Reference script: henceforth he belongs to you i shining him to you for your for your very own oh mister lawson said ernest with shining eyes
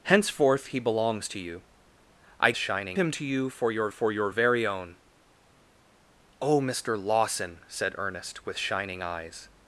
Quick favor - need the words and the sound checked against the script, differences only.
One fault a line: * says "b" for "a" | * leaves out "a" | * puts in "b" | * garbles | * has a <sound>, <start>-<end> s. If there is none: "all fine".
all fine